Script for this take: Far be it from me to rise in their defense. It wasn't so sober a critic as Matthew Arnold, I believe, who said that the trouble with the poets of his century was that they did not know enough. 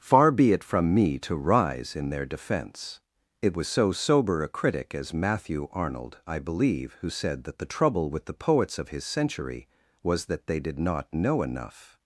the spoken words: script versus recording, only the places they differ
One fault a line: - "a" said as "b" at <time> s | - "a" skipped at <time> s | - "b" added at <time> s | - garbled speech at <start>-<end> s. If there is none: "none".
- "wasn't" said as "was" at 3.5 s